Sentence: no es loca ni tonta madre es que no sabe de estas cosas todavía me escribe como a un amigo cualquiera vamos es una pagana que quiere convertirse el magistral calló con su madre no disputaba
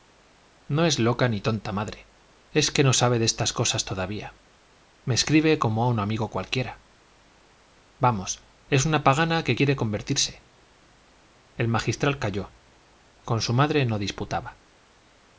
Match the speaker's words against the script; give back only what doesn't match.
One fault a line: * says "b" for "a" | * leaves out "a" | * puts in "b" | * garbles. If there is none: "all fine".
all fine